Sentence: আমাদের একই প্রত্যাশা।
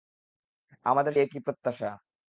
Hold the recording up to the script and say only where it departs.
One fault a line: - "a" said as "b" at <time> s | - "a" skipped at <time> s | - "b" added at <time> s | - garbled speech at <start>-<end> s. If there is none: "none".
none